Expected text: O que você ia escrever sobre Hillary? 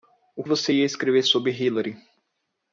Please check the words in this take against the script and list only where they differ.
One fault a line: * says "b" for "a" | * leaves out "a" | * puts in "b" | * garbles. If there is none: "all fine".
* leaves out "que"